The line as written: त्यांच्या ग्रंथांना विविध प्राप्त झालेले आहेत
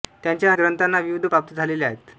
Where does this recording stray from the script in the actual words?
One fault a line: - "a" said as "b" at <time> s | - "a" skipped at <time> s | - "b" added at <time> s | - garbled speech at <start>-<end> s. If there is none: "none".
none